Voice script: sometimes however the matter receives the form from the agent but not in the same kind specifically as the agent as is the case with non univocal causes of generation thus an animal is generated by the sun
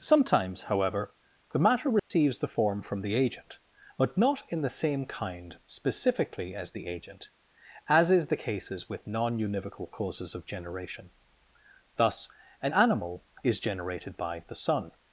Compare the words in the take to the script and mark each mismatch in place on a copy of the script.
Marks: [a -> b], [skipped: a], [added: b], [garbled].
sometimes however the matter receives the form from the agent but not in the same kind specifically as the agent as is the [case -> cases] with non univocal causes of generation thus an animal is generated by the sun